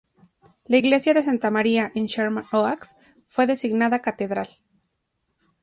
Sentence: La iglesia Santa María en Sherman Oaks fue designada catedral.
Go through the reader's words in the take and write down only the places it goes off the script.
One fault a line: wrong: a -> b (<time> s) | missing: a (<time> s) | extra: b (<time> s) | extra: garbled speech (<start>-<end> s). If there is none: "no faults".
extra: de (1.1 s)